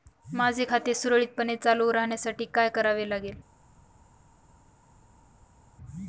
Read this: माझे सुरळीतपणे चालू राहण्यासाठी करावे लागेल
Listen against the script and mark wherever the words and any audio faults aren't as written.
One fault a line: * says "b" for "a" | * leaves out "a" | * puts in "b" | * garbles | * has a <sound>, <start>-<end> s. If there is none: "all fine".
* puts in "खाते"
* puts in "काय"